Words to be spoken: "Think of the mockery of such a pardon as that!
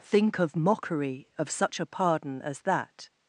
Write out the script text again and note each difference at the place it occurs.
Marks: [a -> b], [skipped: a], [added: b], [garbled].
"Think of [skipped: the] mockery of such a pardon as that!